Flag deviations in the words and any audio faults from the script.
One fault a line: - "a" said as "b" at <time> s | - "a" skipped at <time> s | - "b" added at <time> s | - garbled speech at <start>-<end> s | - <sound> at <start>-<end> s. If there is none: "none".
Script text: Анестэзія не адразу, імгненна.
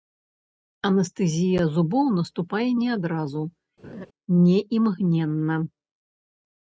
- "зубоў наступае" added at 1.8 s
- laugh at 3.8-4.1 s
- "не" added at 4.5 s